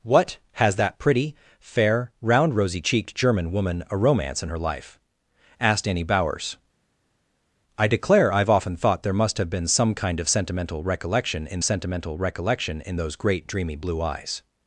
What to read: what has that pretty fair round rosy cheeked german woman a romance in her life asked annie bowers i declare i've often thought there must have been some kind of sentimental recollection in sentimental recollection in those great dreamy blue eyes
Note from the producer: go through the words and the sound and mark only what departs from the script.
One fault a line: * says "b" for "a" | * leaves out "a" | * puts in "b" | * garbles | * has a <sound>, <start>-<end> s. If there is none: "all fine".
all fine